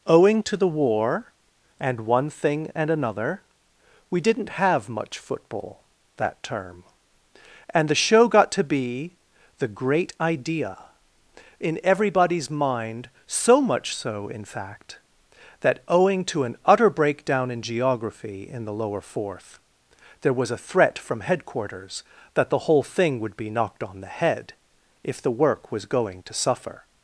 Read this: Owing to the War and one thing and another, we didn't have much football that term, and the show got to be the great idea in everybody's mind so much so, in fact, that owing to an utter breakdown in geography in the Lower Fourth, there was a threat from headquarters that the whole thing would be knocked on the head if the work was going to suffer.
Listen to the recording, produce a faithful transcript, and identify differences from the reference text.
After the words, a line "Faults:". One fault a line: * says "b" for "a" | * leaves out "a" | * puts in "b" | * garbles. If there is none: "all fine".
Owing to the War and one thing and another, we didn't have much football that term, and the show got to be the great idea in everybody's mind so much so, in fact, that owing to an utter breakdown in geography in the Lower Fourth, there was a threat from headquarters that the whole thing would be knocked on the head if the work was going to suffer.
Faults:
all fine